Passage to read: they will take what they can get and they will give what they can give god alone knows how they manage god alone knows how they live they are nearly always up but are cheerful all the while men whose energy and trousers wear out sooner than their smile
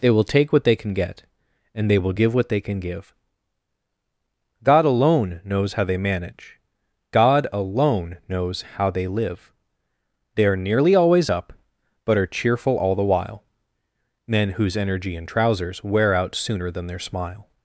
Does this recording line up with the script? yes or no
yes